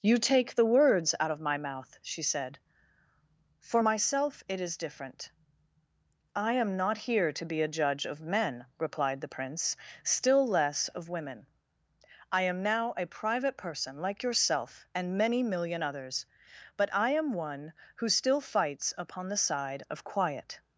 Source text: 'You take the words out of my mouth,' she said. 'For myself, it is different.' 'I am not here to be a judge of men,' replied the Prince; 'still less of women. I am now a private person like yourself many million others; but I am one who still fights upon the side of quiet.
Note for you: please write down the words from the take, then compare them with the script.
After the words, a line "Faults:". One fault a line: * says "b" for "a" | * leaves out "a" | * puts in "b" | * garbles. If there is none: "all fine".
'You take the words out of my mouth,' she said. 'For myself, it is different.' 'I am not here to be a judge of men,' replied the Prince; 'still less of women. I am now a private person like yourself and many million others; but I am one who still fights upon the side of quiet.
Faults:
* puts in "and"